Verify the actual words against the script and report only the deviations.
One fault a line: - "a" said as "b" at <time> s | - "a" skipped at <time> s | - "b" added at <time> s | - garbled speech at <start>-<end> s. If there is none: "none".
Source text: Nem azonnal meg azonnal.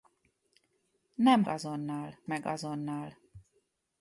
none